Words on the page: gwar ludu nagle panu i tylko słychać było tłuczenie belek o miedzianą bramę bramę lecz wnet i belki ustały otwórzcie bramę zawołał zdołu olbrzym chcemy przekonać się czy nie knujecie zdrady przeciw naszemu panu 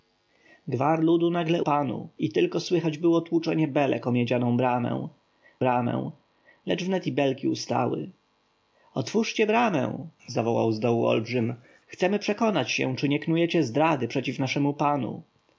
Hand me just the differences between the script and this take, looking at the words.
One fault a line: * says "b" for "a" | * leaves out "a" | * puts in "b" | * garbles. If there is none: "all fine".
all fine